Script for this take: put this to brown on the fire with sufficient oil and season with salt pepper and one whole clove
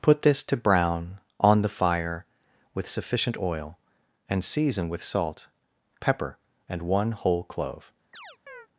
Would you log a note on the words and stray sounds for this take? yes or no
yes